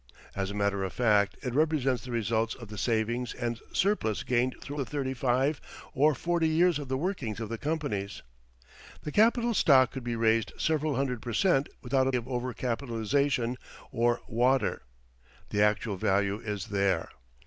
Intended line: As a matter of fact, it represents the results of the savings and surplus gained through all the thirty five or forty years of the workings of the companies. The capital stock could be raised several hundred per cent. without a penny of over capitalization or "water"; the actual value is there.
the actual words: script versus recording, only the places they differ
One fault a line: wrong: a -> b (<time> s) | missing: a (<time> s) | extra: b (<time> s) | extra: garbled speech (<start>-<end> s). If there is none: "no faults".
missing: all (4.8 s)
missing: penny (12.1 s)